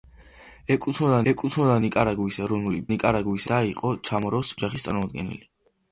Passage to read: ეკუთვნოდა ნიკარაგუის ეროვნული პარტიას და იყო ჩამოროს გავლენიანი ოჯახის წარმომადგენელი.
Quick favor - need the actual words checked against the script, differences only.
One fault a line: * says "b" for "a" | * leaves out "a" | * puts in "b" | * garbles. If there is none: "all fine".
* puts in "ეკუთვნოდა"
* says "ნიკარაგუის" for "პარტიას"
* leaves out "გავლენიანი"